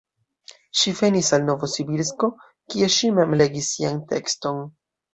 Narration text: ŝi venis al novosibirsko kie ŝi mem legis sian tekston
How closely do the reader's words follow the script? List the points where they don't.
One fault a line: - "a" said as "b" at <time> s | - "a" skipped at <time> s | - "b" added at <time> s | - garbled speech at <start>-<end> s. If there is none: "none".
none